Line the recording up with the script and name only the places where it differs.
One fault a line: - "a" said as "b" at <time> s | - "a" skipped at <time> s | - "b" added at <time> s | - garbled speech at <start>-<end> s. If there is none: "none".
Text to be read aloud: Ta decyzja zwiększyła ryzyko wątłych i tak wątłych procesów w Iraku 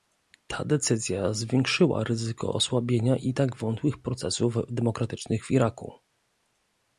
- "wątłych" said as "osłabienia" at 2.5 s
- "demokratycznych" added at 4.7 s